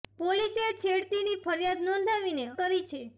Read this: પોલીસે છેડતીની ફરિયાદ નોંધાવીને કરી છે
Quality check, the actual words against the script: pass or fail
pass